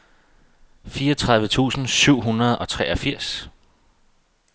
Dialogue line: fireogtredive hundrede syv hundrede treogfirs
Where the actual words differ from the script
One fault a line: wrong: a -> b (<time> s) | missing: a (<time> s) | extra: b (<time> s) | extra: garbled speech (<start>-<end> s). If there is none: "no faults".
wrong: hundrede -> tusind (1.5 s)
extra: og (2.6 s)